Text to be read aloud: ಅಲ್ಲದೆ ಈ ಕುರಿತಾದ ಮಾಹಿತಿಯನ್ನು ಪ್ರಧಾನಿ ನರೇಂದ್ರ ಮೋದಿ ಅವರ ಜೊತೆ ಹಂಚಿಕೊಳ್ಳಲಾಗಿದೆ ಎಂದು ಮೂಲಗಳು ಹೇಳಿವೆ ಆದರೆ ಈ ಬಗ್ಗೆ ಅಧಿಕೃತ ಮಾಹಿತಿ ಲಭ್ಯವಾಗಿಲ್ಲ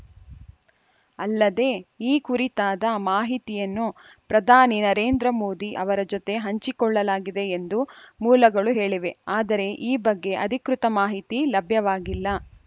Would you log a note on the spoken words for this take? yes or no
no